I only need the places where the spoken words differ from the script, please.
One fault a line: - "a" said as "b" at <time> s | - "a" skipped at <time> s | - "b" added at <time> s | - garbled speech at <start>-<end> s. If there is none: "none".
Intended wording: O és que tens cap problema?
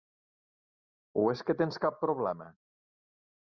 none